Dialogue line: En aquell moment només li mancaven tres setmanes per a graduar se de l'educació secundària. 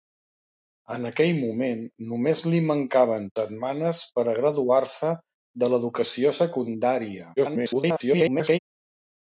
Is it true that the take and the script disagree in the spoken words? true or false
true